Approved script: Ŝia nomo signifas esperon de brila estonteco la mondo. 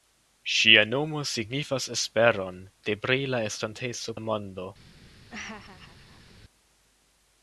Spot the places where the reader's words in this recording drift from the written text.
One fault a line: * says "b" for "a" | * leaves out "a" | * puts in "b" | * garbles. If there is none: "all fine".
all fine